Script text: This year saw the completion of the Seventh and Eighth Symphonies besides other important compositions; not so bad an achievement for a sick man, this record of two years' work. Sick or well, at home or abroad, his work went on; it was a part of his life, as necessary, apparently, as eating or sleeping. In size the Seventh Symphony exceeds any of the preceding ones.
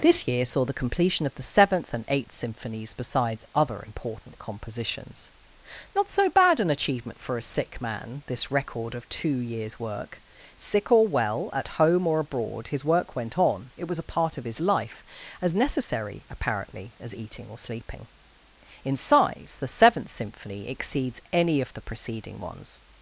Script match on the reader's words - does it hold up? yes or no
yes